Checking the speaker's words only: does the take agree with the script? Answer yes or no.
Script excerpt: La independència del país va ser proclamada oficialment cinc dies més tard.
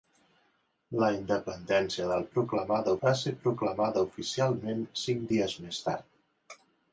no